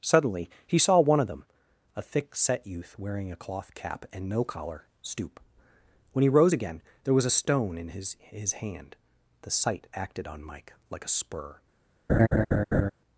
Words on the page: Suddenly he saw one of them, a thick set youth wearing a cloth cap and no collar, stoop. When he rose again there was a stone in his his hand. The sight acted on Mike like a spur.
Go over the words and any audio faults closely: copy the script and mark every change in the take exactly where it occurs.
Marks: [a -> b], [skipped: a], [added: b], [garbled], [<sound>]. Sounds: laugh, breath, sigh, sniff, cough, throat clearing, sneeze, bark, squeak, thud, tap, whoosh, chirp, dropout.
Suddenly he saw one of them, a thick set youth wearing a cloth cap and no collar, stoop. When he rose again there was a stone in his his hand. The sight acted on Mike like a spur. [laugh]